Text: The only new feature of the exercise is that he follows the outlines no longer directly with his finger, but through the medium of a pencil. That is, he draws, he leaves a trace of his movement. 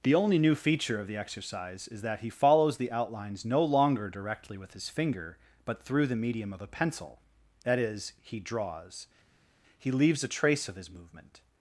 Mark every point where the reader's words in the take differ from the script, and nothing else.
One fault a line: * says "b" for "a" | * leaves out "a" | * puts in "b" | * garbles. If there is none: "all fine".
all fine